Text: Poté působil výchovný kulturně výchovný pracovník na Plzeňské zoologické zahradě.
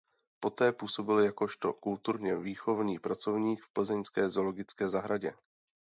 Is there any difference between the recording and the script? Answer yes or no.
yes